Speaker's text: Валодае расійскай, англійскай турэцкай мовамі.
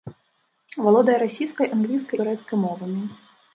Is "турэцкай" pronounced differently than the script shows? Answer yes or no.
no